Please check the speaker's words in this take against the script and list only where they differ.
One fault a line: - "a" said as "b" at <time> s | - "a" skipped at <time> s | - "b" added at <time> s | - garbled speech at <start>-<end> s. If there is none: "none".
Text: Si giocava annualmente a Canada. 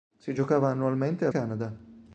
none